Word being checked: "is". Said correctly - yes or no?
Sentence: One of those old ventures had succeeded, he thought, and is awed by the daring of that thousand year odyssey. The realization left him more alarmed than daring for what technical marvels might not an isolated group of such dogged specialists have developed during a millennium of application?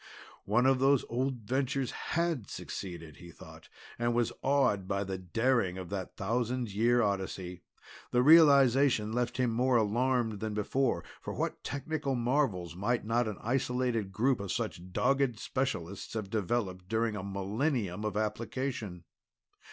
no